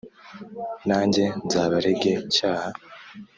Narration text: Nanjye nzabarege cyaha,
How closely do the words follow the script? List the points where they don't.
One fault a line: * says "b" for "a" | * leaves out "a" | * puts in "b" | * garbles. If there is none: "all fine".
all fine